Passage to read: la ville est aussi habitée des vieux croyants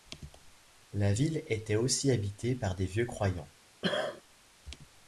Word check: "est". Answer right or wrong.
wrong